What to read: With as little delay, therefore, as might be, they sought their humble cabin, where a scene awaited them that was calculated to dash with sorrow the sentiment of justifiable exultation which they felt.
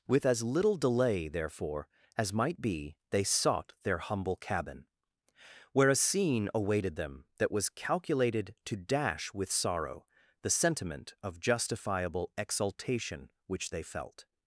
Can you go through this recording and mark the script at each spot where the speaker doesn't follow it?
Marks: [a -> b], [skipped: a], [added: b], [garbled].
With as little delay, therefore, as might be, they sought their humble cabin, where a scene awaited them that was calculated to dash with sorrow the sentiment of justifiable exultation which they felt.